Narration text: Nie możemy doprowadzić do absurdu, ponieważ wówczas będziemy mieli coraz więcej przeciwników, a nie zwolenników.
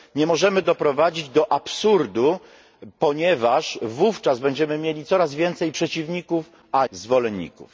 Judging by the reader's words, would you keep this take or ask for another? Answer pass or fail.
fail